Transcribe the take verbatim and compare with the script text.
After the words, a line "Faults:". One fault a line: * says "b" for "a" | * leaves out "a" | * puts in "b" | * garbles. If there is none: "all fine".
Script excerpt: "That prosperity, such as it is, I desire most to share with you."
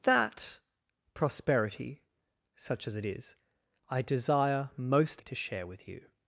"That prosperity, such as it is, I desire most to share with you."
Faults:
all fine